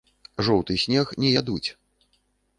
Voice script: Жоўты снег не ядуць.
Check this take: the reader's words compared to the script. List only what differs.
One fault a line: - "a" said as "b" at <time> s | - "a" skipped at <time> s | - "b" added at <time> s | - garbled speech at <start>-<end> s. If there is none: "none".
none